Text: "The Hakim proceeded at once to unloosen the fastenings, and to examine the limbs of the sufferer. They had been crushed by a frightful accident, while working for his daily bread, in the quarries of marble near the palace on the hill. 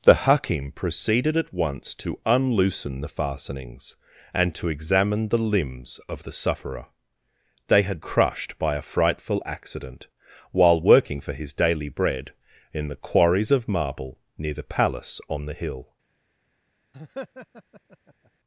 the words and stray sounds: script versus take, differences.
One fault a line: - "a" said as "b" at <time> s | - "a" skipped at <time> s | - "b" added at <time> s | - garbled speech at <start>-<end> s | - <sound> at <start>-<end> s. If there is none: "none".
- "been" skipped at 8.0 s
- laugh at 16.9-18.3 s